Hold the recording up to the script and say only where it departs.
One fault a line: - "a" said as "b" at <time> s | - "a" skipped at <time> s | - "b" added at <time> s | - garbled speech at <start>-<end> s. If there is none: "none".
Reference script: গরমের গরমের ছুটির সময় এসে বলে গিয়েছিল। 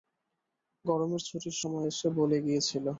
- "গরমের" skipped at 1.2 s